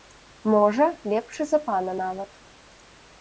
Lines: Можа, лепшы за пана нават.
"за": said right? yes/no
yes